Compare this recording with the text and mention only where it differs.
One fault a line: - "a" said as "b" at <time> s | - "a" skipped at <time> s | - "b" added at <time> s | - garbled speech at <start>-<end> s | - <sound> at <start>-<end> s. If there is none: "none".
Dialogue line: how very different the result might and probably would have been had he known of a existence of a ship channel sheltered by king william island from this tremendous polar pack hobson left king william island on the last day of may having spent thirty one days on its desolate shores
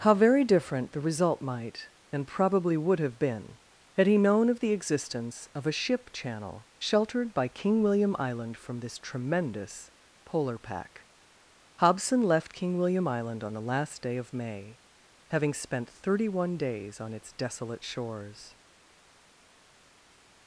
- "a" said as "the" at 4.6 s